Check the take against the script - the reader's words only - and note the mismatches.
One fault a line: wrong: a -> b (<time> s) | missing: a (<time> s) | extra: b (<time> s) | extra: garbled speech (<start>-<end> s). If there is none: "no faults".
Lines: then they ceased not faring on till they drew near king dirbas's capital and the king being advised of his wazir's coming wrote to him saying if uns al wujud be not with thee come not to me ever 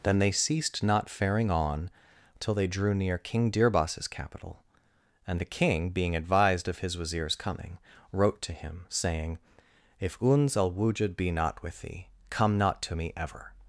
no faults